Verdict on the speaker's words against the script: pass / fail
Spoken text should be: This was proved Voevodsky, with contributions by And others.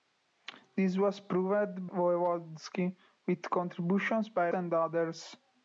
pass